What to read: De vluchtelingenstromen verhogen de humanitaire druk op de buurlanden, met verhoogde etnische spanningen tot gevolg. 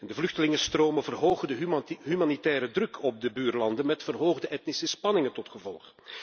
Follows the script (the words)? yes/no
yes